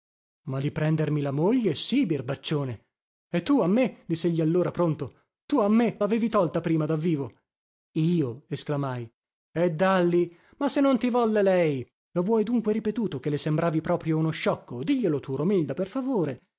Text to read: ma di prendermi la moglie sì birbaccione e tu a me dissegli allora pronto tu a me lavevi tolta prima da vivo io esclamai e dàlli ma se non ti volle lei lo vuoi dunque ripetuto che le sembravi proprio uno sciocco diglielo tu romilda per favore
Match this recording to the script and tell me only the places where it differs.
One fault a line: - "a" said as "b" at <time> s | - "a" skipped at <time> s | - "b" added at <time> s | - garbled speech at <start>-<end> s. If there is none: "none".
none